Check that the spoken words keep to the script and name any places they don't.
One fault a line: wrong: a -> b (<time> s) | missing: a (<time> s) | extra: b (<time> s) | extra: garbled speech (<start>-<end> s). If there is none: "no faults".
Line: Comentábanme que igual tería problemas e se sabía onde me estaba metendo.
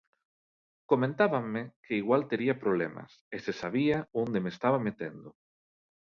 no faults